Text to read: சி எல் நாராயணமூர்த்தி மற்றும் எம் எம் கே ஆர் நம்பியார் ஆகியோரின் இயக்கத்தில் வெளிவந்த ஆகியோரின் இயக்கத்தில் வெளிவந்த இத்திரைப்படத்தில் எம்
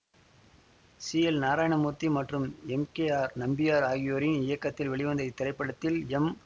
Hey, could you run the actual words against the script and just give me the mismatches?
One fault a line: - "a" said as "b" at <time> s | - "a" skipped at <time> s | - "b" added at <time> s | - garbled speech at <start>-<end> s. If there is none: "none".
- "எம்" skipped at 2.9 s
- "ஆகியோரின் இயக்கத்தில் வெளிவந்த" skipped at 5.2 s